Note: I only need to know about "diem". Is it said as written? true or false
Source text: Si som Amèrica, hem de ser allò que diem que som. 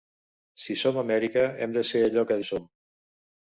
false